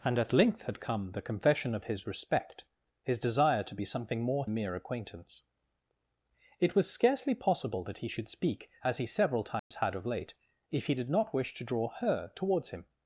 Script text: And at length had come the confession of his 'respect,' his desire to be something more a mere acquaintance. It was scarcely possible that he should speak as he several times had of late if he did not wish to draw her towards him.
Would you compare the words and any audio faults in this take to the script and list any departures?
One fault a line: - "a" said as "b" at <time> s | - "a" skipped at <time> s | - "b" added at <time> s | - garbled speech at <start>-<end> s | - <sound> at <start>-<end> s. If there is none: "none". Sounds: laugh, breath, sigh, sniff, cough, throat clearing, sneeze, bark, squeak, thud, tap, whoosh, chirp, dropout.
- dropout at 9.6-9.7 s